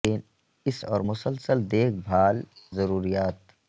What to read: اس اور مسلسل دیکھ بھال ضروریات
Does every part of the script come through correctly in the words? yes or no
yes